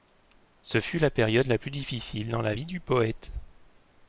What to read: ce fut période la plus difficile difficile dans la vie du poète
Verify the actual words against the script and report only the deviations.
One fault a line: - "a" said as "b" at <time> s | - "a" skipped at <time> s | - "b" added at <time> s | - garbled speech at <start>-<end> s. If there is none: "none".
- "la" added at 1.0 s
- "difficile" skipped at 2.3 s